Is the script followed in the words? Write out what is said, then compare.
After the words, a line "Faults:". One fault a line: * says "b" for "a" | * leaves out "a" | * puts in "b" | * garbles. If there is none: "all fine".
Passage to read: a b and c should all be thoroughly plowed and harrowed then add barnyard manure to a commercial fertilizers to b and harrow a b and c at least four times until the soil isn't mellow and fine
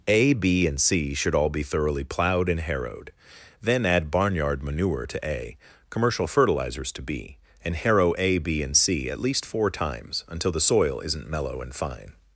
a b and c should all be thoroughly plowed and harrowed then add barnyard manure to a commercial fertilizers to b and harrow a b and c at least four times until the soil isn't mellow and fine
Faults:
all fine